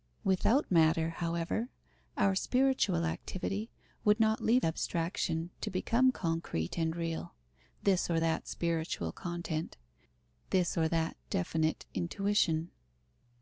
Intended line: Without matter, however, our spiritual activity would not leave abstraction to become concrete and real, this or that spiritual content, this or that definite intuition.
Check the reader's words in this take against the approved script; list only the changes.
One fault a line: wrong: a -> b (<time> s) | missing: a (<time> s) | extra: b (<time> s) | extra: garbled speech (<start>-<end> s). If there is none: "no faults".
no faults